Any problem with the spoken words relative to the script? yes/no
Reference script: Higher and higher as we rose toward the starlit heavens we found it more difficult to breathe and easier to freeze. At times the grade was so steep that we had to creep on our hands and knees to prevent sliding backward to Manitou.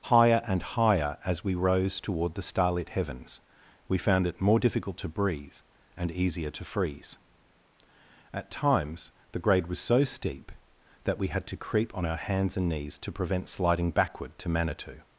no